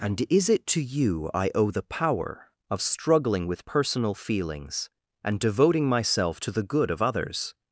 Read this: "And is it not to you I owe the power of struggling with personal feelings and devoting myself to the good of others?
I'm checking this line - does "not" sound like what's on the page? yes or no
no